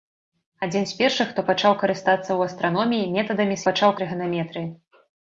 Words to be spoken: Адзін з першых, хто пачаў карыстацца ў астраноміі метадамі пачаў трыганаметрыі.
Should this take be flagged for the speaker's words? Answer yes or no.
no